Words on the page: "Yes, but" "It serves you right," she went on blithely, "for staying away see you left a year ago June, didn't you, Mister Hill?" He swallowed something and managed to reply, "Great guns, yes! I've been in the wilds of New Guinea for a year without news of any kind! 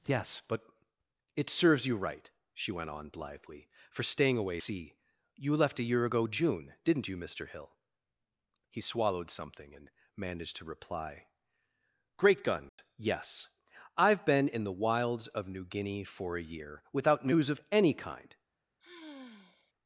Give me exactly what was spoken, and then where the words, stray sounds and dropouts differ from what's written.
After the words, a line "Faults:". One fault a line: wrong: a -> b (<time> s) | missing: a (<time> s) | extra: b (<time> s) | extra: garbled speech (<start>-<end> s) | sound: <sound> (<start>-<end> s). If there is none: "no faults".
"Yes, but" "It serves you right," she went on blithely, "for staying away see you left a year ago June, didn't you, Mister Hill?" He swallowed something and managed to reply, "Great guns, yes! I've been in the wilds of New Guinea for a year without news of any kind!
Faults:
sound: dropout (12.7-12.8 s)
sound: sigh (18.8-19.7 s)